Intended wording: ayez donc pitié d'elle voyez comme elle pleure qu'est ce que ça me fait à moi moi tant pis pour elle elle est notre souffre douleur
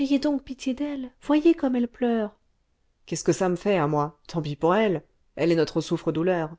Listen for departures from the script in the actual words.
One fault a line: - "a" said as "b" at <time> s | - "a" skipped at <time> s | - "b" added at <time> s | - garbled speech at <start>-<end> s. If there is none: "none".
- "moi" skipped at 4.2 s